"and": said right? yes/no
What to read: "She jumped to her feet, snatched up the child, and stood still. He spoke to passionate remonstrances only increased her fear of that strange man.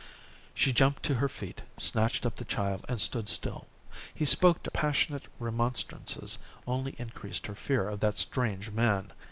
yes